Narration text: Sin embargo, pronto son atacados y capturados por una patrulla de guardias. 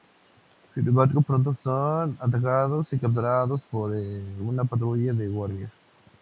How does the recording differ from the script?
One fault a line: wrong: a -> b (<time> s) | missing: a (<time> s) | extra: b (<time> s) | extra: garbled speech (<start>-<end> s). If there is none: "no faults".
no faults